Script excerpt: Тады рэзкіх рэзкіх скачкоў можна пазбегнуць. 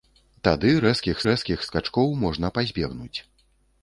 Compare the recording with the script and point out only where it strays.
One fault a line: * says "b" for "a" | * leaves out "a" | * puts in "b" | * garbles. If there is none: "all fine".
all fine